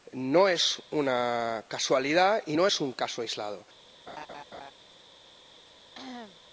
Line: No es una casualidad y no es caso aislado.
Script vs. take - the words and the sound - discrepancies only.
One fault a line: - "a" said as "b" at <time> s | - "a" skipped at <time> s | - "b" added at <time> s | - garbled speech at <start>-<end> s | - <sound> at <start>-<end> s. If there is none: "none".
- "un" added at 2.8 s
- laugh at 4.1-4.7 s
- cough at 5.9-6.4 s